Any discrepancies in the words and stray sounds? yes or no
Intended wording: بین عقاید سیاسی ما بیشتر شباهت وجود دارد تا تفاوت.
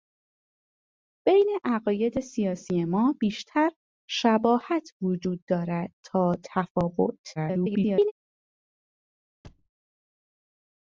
yes